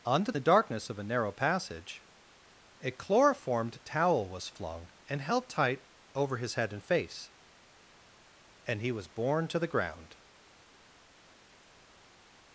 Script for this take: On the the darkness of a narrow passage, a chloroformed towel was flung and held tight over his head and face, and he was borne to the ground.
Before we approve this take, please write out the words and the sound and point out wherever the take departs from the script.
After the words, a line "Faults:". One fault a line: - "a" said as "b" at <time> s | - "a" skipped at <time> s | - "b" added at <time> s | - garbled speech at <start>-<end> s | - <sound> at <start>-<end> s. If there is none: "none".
On the the darkness of a narrow passage, a chloroformed towel was flung and held tight over his head and face, and he was borne to the ground.
Faults:
none